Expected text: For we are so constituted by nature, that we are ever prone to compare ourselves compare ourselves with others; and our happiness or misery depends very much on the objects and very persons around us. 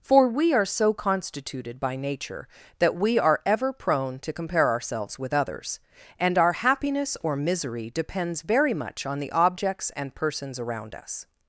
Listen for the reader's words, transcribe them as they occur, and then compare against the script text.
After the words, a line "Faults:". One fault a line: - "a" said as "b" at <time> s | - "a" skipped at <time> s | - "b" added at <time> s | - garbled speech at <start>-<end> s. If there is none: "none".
For we are so constituted by nature, that we are ever prone to compare ourselves with others; and our happiness or misery depends very much on the objects and persons around us.
Faults:
- "compare ourselves" skipped at 5.2 s
- "very" skipped at 10.2 s